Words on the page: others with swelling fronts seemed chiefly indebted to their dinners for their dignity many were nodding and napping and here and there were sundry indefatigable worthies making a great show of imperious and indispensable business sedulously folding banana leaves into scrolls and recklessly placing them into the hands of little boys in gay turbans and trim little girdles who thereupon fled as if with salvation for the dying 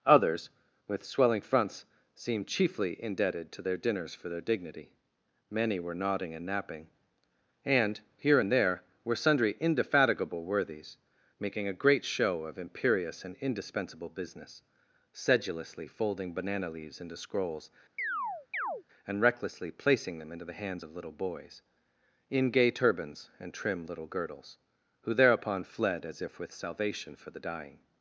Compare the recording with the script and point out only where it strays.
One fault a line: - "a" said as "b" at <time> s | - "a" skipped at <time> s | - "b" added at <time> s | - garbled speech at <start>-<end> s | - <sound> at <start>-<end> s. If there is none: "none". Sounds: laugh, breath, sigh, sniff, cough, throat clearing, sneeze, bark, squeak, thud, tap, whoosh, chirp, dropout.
- chirp at 18.0-18.8 s